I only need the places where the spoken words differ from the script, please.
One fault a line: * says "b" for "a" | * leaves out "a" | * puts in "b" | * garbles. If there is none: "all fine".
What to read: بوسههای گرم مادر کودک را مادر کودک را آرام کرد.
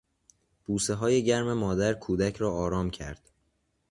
* leaves out "مادر کودک را"